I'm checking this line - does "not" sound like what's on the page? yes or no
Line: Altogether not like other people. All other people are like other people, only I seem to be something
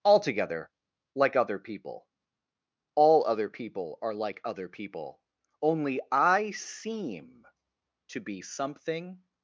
no